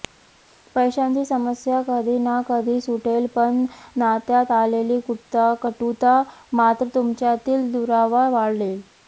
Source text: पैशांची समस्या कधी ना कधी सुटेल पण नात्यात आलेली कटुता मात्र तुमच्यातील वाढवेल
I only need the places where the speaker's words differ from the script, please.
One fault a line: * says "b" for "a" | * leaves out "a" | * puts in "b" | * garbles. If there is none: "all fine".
* puts in "दुरावा"